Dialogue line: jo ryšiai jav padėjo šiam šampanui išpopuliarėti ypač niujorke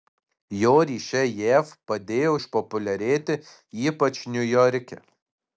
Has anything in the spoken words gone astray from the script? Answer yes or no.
yes